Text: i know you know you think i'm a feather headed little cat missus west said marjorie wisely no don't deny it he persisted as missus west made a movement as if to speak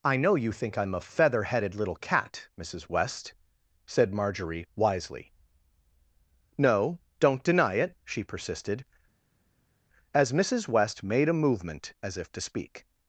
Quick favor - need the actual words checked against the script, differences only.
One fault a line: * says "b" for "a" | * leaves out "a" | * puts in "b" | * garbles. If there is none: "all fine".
* leaves out "know you"
* says "she" for "he"